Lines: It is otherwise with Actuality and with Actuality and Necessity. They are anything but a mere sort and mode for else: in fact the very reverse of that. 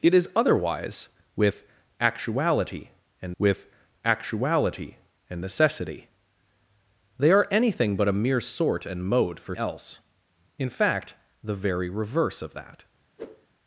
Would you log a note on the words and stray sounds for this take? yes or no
yes